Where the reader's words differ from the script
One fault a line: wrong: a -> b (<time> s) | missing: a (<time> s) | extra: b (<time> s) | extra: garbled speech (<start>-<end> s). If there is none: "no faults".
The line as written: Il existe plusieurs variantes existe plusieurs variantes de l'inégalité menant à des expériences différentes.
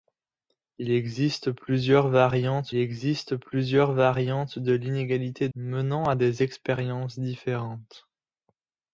no faults